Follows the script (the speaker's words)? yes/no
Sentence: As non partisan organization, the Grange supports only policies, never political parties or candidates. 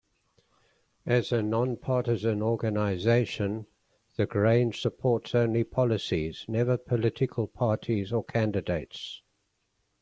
no